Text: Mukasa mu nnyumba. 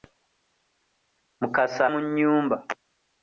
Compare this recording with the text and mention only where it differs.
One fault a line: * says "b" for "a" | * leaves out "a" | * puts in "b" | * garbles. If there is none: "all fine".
all fine